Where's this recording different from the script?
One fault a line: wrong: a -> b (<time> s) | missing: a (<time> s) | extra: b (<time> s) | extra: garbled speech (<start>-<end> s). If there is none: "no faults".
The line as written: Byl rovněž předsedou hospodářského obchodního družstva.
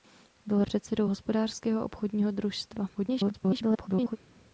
missing: rovněž (0.6 s)
extra: garbled speech (2.9-4.2 s)